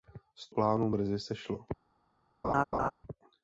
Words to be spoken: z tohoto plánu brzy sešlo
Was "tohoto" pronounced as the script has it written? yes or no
no